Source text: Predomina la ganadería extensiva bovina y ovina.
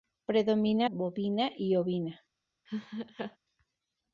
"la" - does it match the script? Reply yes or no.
no